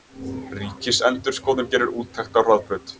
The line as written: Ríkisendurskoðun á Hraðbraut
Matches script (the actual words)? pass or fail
fail